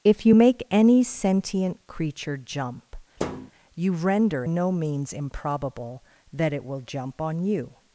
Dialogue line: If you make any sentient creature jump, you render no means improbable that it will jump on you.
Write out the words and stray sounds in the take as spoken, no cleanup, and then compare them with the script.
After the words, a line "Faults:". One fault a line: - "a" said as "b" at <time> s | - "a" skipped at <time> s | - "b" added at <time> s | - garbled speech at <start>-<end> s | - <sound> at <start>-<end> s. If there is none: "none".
If you make any sentient creature jump, you render no means improbable that it will jump on you.
Faults:
- thud at 3.2-3.5 s